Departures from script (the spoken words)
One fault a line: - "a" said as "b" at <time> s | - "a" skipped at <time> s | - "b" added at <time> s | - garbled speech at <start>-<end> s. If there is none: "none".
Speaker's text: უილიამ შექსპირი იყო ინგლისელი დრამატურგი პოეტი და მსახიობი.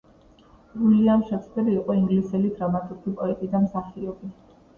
none